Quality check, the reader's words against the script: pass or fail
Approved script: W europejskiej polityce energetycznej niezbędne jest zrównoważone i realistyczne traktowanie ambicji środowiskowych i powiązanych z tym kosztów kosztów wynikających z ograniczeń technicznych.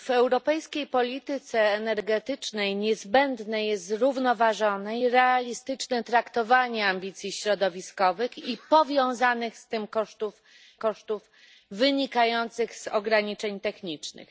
pass